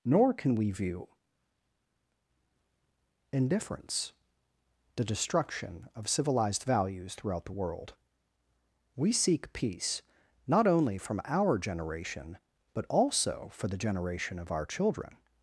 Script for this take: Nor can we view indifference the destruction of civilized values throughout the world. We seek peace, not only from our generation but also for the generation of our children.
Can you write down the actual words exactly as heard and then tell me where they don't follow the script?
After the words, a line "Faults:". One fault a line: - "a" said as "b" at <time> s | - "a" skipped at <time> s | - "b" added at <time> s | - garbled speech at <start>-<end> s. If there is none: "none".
Nor can we view indifference the destruction of civilized values throughout the world. We seek peace, not only from our generation but also for the generation of our children.
Faults:
none